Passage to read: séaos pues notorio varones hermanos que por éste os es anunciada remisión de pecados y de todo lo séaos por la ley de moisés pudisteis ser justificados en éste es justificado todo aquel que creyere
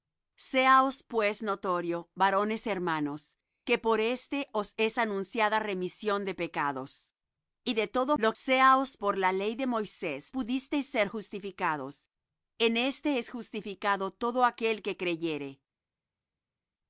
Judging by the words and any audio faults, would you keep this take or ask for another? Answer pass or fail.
pass